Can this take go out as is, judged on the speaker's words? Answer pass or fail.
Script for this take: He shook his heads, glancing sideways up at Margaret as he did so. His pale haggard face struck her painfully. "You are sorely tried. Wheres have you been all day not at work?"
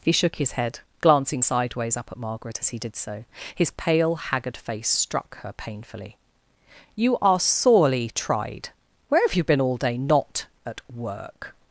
fail